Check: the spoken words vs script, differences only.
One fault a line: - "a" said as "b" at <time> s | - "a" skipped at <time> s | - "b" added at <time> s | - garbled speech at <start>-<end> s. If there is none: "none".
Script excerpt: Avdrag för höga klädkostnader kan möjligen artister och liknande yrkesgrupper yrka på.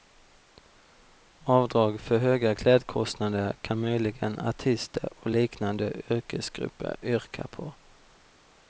none